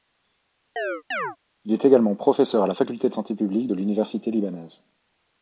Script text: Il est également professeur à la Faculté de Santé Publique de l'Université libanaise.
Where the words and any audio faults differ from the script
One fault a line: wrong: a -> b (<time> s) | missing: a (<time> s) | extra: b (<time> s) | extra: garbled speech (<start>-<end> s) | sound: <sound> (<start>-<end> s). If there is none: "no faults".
sound: chirp (0.8-1.4 s)